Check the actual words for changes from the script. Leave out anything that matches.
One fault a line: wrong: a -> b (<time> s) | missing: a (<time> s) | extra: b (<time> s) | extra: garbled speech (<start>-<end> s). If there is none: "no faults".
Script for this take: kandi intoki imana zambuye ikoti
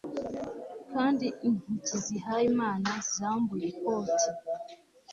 extra: zihaye (2.0 s)